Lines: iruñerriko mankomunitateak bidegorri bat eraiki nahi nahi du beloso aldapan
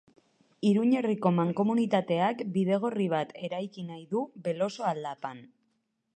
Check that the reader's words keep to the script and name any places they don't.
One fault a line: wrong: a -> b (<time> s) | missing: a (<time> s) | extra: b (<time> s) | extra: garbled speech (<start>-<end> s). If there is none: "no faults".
missing: nahi (4.0 s)